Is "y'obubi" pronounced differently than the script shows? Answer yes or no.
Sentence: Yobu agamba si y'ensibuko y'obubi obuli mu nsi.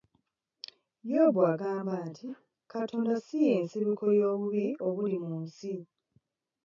no